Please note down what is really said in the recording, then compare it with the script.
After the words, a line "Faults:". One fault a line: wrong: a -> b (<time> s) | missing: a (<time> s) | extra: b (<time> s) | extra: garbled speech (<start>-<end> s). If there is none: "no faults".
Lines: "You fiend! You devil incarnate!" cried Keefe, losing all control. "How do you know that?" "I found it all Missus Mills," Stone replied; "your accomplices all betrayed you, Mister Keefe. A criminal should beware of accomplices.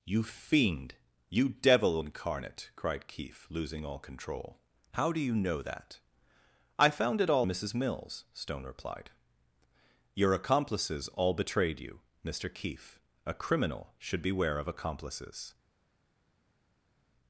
"You fiend! You devil incarnate!" cried Keefe, losing all control. "How do you know that?" "I found it all Missus Mills," Stone replied; "your accomplices all betrayed you, Mister Keefe. A criminal should beware of accomplices.
Faults:
no faults